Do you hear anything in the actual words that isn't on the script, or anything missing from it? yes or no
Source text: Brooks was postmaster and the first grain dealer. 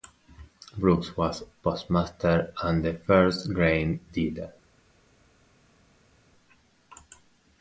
no